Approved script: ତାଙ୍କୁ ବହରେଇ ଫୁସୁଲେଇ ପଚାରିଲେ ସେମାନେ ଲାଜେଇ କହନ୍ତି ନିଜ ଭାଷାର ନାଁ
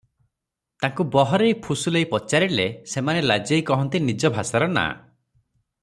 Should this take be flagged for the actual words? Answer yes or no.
no